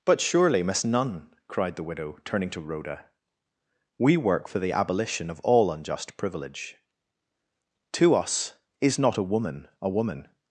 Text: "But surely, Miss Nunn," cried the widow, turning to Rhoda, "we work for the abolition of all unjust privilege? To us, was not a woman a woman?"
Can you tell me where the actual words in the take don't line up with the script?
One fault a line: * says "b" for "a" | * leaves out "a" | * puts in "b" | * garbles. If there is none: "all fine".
* says "is" for "was"